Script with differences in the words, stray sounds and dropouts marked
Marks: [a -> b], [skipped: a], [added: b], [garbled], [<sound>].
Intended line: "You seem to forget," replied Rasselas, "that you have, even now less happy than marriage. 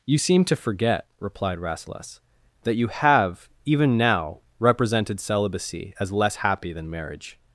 "You seem to forget," replied Rasselas, "that you have, even now [added: represented celibacy as] less happy than marriage.